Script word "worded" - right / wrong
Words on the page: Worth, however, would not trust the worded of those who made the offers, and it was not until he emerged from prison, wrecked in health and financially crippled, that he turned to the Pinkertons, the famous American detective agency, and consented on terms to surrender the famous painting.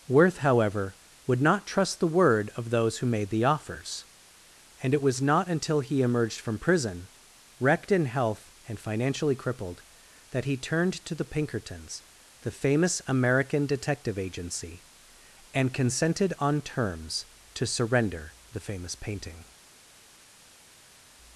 wrong